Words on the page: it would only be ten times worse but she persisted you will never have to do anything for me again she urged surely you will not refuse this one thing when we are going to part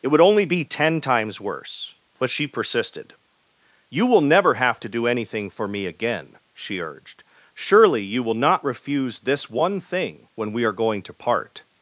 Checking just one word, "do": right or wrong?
right